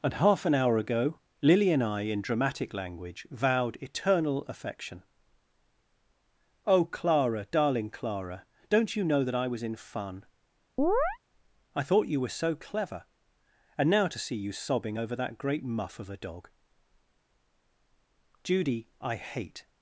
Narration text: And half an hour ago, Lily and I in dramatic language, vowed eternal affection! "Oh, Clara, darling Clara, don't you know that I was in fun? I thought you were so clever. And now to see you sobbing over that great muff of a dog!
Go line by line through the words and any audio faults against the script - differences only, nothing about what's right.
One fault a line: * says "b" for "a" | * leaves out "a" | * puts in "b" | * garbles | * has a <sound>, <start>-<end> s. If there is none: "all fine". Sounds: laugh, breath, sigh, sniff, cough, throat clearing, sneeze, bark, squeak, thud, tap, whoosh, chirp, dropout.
* has a chirp, 10.8-11.2 s
* puts in "Judy I hate"